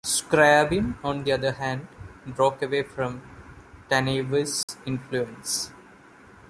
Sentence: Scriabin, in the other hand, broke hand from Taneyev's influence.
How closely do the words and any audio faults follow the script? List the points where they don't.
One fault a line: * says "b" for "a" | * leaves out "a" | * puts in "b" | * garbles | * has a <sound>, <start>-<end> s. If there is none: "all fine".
* says "on" for "in"
* says "away" for "hand"
* has a dropout, 4.6-4.7 s